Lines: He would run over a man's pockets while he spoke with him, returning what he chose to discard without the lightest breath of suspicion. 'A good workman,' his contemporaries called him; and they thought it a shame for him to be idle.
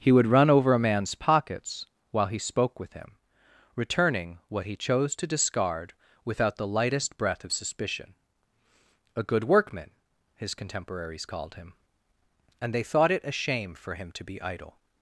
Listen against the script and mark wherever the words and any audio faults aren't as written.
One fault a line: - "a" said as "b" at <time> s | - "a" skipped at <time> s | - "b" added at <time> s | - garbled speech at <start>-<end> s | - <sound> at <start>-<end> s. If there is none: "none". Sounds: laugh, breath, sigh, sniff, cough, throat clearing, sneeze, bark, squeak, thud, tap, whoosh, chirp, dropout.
none